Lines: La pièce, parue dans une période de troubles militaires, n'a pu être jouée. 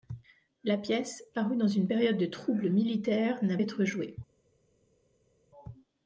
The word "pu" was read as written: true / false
false